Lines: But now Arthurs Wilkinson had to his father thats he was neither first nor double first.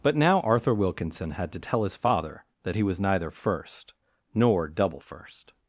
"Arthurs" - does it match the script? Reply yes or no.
no